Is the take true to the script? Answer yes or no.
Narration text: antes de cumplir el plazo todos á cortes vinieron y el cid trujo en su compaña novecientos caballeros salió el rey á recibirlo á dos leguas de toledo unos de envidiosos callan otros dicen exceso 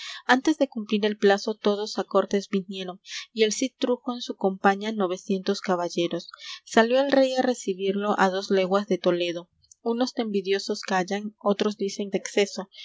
yes